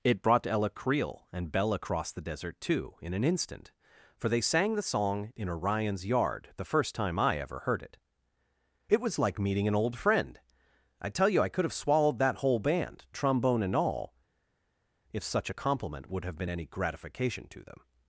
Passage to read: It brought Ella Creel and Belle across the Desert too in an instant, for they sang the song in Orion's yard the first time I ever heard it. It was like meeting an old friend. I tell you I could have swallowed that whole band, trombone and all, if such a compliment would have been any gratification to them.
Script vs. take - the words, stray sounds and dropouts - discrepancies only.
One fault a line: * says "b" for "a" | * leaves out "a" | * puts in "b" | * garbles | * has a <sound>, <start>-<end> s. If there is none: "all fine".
all fine